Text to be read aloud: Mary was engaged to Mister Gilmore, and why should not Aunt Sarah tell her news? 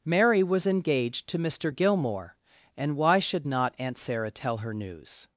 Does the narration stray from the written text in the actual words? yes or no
no